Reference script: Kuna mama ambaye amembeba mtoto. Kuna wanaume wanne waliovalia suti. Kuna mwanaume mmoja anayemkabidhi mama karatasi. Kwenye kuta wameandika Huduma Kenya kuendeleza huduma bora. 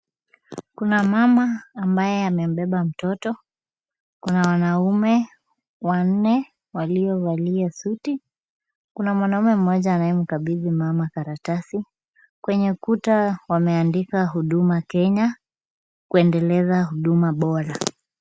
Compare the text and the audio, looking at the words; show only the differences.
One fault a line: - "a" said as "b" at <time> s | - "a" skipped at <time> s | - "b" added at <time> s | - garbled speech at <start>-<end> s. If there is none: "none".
none